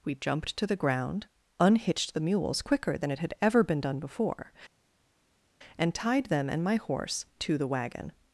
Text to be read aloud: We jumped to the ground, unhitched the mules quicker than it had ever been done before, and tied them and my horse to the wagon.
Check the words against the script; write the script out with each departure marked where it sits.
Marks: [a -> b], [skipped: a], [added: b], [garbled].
We jumped to the ground, unhitched the mules quicker than it had ever been done before, and tied them and my horse to the wagon.